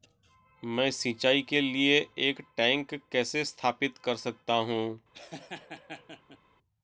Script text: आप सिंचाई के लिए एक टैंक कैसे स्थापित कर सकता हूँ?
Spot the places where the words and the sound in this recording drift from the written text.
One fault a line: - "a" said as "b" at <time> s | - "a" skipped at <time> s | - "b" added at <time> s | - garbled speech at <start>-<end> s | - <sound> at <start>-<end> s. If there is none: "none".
- "आप" said as "मैं" at 0.6 s
- laugh at 5.1-6.4 s